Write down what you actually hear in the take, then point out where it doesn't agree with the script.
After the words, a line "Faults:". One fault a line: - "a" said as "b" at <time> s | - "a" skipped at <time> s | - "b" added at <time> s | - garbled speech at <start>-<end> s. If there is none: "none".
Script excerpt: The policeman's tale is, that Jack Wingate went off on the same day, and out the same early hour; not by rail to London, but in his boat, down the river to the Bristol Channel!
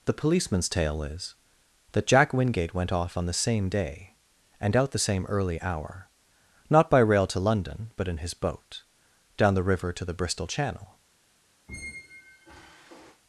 The policeman's tale is, that Jack Wingate went off on the same day, and out the same early hour; not by rail to London, but in his boat, down the river to the Bristol Channel!
Faults:
none